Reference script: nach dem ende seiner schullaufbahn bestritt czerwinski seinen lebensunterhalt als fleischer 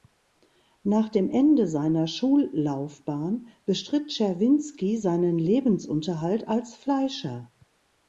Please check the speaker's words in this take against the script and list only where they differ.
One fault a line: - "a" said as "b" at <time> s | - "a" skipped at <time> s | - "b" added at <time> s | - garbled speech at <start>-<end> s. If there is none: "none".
none